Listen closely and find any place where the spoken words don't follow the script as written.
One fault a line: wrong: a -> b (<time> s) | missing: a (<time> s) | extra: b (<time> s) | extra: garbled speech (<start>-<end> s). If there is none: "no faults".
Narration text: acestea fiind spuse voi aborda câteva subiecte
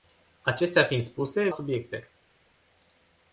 missing: voi aborda câteva (1.5 s)